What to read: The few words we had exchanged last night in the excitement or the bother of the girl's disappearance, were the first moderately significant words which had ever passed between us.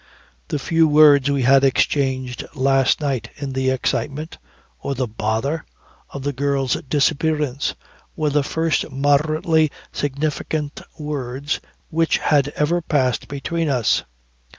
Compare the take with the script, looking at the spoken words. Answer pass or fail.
pass